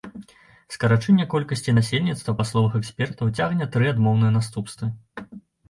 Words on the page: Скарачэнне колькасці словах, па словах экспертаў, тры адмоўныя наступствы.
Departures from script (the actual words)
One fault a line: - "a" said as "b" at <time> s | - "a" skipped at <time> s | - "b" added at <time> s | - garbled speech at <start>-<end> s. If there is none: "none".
- "словах" said as "насельніцтва" at 1.8 s
- "цягне" added at 3.4 s